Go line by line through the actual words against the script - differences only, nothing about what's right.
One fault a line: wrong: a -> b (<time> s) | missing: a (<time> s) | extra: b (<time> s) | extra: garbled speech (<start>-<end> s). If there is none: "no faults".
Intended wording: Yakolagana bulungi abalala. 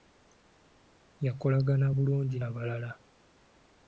no faults